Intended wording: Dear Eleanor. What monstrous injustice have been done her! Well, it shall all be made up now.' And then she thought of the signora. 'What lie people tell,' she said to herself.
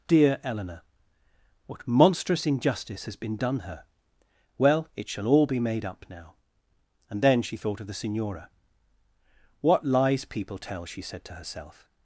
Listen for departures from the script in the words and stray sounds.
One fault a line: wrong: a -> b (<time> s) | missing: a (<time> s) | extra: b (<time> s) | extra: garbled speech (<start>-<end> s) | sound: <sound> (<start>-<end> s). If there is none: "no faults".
wrong: have -> has (3.0 s)
wrong: lie -> lies (9.8 s)